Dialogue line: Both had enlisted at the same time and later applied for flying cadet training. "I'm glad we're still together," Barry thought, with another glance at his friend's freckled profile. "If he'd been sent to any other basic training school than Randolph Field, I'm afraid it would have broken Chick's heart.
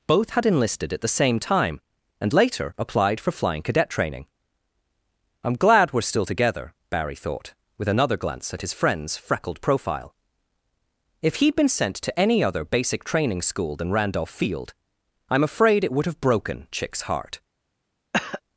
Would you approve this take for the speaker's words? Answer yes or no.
yes